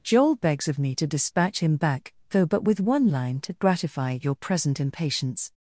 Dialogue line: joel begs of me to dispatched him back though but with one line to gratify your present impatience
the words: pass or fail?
fail